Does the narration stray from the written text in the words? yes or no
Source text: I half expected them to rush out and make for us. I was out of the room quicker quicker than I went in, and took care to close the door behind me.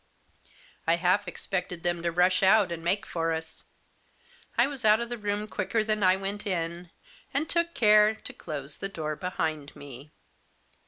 yes